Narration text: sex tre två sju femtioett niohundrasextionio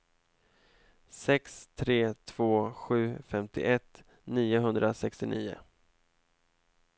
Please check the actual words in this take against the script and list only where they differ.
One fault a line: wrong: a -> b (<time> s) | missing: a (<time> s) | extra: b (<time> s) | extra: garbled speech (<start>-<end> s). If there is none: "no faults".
no faults